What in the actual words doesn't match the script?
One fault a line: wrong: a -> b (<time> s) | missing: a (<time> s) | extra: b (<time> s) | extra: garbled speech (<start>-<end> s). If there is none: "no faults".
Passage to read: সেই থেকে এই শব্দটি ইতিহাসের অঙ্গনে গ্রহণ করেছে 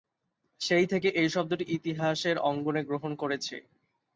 no faults